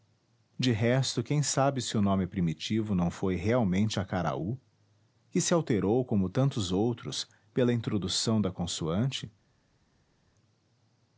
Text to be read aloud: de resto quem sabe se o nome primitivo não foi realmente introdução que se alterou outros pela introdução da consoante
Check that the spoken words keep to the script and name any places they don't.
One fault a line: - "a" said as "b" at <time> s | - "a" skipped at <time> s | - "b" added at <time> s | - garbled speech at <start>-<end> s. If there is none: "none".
- "introdução" said as "acaraú" at 4.0 s
- "como tantos" added at 6.0 s